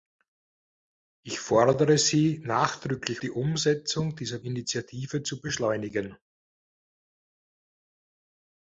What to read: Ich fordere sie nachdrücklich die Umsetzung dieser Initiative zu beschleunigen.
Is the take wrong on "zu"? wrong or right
right